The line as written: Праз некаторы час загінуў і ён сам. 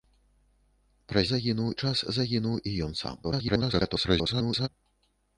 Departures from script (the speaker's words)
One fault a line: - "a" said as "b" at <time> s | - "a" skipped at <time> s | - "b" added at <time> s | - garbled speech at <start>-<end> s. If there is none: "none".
- "некаторы" said as "загінуў" at 1.3 s
- garbled speech at 3.2-4.7 s